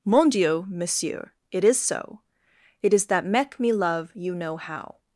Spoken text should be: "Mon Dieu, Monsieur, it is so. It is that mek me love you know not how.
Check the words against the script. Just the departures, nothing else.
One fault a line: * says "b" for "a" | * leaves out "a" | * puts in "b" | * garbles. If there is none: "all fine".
* leaves out "not"